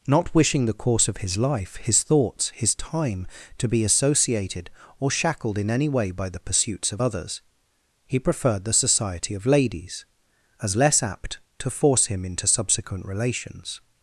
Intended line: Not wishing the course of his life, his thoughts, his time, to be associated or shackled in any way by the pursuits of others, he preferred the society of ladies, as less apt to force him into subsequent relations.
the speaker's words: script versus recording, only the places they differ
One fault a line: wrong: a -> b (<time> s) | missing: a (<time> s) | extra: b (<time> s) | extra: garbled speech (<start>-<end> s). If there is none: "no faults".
no faults